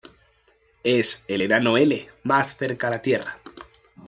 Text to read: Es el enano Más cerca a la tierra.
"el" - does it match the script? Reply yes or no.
yes